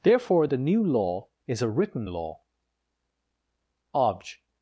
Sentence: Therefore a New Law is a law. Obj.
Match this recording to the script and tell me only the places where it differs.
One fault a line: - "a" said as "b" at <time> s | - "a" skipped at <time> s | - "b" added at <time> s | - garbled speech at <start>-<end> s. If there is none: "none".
- "a" said as "the" at 0.5 s
- "written" added at 1.7 s